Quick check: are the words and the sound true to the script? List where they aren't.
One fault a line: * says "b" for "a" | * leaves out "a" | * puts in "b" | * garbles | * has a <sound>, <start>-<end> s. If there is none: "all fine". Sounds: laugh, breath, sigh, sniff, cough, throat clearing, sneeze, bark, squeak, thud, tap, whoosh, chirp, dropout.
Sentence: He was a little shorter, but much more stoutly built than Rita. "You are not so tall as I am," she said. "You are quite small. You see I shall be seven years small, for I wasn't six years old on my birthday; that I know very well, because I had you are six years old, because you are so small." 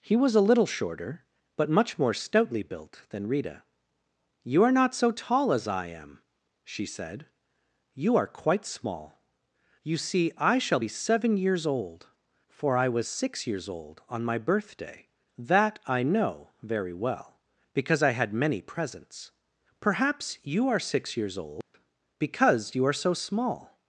* says "old" for "small"
* says "was" for "wasn't"
* puts in "many presents Perhaps"
* has a dropout, 21.6-21.7 s